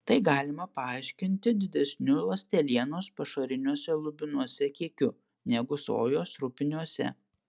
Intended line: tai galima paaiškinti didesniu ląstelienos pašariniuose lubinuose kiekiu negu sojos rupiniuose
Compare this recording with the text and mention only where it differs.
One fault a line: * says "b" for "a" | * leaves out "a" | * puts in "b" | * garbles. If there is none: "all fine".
all fine